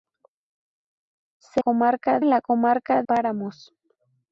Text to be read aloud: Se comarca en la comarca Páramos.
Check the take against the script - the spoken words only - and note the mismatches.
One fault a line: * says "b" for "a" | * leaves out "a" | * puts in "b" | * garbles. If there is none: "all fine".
all fine